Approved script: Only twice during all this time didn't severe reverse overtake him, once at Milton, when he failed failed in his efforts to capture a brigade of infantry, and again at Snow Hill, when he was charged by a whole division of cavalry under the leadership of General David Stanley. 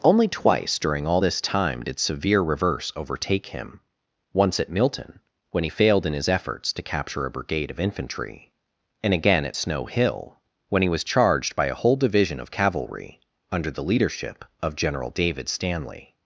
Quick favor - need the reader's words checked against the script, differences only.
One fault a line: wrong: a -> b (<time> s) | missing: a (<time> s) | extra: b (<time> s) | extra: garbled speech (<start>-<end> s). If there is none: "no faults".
wrong: didn't -> did (1.8 s)
missing: failed (6.1 s)